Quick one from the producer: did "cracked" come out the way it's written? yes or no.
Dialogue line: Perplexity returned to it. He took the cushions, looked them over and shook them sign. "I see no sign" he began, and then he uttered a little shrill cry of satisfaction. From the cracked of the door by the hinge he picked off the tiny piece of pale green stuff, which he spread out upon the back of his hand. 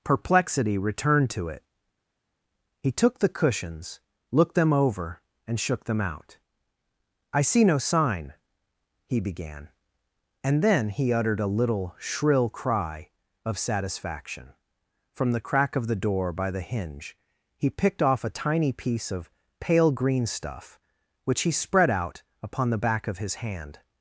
no